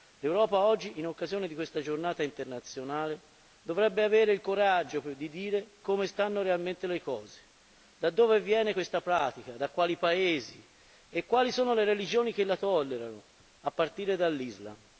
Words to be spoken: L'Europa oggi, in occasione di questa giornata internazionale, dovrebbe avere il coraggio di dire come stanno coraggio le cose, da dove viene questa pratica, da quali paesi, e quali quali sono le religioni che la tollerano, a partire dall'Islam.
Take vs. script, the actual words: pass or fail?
fail